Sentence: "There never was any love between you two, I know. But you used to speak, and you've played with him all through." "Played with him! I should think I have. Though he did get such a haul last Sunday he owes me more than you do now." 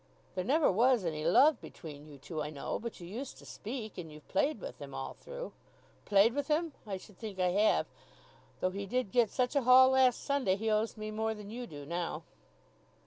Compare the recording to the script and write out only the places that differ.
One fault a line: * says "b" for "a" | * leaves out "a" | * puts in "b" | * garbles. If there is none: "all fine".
all fine